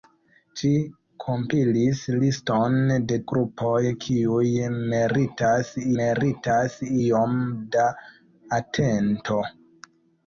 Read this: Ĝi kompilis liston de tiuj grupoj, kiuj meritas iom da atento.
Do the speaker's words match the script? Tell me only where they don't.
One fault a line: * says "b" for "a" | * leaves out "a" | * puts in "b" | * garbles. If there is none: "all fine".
* leaves out "tiuj"
* puts in "meritas"